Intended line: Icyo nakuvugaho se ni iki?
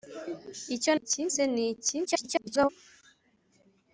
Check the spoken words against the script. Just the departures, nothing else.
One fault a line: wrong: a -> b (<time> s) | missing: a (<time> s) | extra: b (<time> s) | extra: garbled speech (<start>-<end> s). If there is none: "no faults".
wrong: nakuvugaho -> iki (1.0 s)
extra: garbled speech (2.0-2.7 s)